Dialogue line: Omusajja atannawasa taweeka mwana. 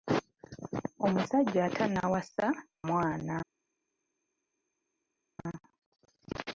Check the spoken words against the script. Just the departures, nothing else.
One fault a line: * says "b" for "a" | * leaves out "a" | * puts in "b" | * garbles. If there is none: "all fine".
* leaves out "taweeka"